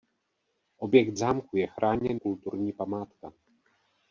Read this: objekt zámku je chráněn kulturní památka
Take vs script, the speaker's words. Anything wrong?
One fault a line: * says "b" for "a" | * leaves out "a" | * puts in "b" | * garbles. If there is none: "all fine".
all fine